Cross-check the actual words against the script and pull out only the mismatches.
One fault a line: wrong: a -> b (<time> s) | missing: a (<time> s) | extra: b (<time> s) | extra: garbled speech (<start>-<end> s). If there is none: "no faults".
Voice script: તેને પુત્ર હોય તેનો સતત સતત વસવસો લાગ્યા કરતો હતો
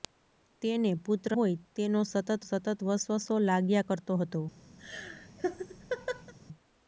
no faults